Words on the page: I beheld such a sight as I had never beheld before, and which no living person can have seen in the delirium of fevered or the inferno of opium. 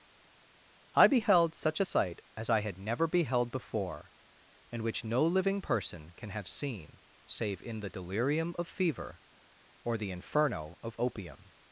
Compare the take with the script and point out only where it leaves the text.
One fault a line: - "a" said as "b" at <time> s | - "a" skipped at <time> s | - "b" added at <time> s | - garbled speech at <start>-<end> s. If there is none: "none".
- "save" added at 7.2 s
- "fevered" said as "fever" at 8.7 s